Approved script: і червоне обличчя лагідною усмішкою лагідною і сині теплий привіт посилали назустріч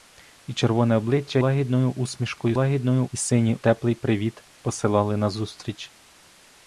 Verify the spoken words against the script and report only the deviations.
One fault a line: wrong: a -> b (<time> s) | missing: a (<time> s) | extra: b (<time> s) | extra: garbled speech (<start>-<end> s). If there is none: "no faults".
no faults